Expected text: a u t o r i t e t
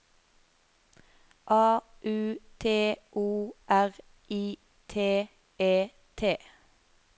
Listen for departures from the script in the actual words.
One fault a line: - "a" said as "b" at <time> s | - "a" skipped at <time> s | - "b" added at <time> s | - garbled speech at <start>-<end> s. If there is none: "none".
none